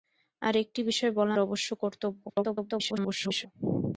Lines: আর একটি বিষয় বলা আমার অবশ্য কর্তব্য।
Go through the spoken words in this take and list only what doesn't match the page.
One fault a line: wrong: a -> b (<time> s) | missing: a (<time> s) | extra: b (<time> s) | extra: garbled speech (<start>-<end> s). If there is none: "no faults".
missing: আমার (1.4 s)
extra: garbled speech (2.3-3.5 s)